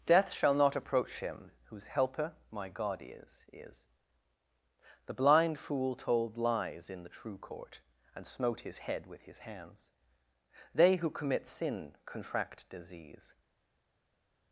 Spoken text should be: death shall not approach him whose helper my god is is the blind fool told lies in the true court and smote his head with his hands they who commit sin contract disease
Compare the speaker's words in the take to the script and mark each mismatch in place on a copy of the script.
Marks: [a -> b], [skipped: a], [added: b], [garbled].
death shall not approach him whose helper my god is is the blind fool told lies in the true court and smote his head with his hands they who commit sin contract disease